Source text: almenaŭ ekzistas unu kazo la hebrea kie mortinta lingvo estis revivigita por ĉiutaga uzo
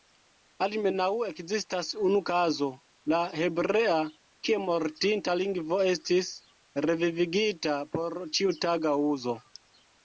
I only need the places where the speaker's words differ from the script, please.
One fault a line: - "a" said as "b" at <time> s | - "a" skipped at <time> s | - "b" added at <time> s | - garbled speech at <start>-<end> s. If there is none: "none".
none